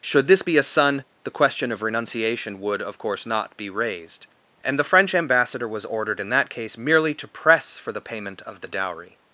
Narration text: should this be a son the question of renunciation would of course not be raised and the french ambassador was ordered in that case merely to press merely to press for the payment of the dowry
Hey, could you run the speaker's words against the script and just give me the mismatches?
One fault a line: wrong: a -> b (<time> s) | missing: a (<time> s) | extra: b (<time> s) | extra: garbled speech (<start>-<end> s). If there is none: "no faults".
missing: merely to press (7.8 s)